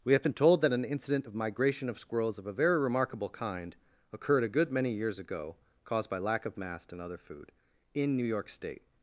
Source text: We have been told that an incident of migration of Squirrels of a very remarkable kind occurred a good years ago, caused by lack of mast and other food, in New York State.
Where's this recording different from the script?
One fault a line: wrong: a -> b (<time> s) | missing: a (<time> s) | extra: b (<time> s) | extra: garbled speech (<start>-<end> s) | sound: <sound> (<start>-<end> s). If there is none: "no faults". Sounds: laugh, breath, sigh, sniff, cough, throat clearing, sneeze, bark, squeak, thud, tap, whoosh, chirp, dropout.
extra: many (4.7 s)